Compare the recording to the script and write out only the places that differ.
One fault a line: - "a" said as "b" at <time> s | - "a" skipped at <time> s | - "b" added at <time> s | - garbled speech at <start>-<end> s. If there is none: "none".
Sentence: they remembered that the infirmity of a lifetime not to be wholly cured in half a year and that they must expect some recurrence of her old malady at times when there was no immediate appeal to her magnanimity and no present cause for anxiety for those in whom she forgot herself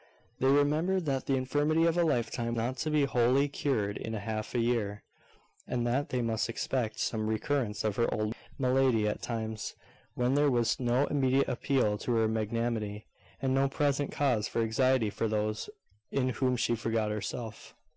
none